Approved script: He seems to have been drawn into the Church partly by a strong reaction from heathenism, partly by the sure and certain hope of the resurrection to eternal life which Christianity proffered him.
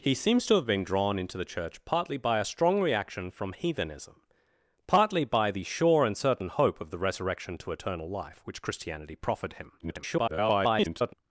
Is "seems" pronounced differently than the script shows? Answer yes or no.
no